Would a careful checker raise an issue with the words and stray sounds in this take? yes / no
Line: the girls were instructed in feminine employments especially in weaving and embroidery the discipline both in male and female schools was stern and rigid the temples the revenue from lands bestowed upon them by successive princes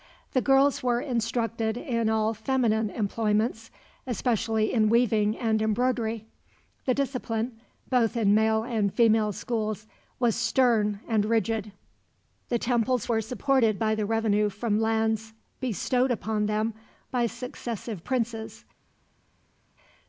yes